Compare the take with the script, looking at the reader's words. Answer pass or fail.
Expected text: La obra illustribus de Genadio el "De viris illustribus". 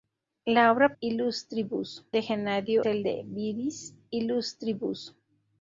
pass